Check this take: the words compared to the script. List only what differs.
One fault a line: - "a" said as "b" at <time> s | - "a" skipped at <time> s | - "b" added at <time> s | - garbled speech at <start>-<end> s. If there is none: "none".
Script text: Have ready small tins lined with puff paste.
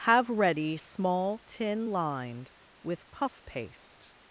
- "tins" said as "tin" at 1.4 s